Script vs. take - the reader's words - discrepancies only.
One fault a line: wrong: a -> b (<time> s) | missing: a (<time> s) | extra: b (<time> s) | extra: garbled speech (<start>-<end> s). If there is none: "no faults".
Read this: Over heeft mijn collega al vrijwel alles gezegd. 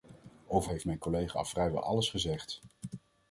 no faults